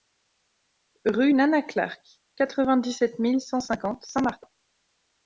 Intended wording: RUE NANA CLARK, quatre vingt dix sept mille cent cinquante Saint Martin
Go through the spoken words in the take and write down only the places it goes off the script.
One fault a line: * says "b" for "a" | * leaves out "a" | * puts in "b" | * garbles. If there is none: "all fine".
all fine